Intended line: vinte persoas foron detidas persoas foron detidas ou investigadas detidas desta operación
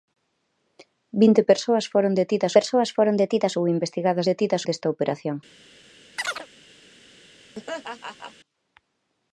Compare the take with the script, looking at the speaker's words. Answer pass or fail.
pass